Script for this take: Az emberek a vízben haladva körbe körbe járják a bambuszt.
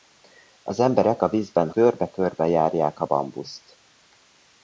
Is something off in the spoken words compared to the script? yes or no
yes